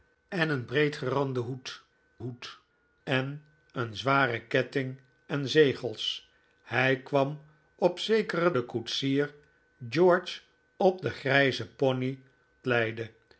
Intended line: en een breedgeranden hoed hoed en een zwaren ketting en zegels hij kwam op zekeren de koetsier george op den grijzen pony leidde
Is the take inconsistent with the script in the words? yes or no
no